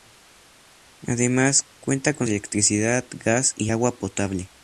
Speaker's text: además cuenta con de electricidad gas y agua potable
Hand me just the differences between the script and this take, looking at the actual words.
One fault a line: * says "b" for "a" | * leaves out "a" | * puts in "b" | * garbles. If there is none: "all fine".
all fine